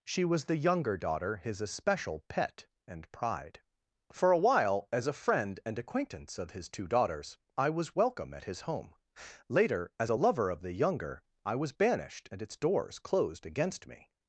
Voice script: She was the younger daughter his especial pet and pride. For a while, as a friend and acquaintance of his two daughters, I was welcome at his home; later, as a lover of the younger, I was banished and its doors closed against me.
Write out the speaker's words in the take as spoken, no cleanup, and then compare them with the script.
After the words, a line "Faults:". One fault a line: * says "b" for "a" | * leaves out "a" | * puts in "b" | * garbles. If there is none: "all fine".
She was the younger daughter his especial pet and pride. For a while, as a friend and acquaintance of his two daughters, I was welcome at his home; later, as a lover of the younger, I was banished and its doors closed against me.
Faults:
all fine